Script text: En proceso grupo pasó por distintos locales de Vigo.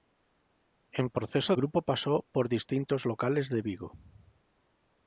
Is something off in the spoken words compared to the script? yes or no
no